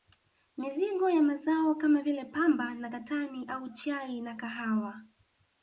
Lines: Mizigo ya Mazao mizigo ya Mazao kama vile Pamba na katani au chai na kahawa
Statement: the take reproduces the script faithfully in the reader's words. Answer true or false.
false